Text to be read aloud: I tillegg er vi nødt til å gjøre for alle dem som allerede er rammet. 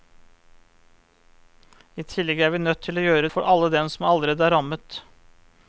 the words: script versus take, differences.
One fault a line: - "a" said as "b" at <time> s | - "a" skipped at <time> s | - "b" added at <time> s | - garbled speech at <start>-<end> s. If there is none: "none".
none